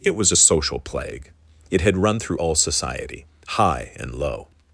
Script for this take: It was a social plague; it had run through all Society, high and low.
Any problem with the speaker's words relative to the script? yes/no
no